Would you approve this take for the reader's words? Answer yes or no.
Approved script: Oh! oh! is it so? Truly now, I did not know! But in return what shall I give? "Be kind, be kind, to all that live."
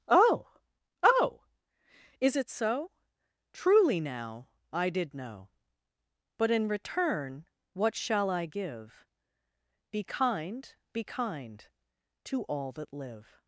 no